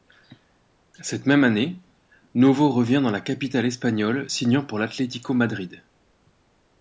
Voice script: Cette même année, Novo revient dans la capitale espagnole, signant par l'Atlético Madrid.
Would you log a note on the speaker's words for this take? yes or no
yes